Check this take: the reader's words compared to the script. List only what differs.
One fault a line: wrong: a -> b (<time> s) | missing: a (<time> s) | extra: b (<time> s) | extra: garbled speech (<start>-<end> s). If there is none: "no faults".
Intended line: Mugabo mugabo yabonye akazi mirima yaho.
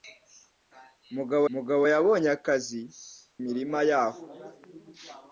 no faults